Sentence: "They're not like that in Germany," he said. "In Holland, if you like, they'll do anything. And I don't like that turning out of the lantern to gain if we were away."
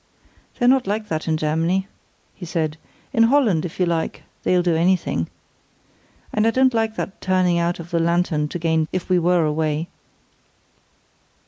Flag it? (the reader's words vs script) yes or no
no